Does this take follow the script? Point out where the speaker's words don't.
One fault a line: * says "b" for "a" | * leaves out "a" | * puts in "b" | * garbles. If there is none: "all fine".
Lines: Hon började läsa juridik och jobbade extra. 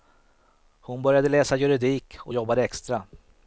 all fine